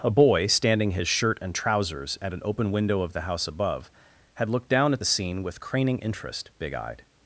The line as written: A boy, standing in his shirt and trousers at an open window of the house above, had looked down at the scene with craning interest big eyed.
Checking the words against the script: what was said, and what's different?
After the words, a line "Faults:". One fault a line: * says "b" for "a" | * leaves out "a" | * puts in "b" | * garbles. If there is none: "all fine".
A boy, standing his shirt and trousers at an open window of the house above, had looked down at the scene with craning interest big eyed.
Faults:
* leaves out "in"